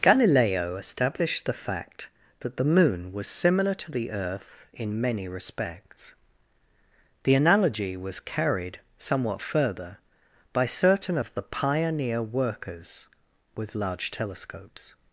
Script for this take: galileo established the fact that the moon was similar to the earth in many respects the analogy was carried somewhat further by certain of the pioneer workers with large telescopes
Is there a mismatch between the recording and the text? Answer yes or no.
no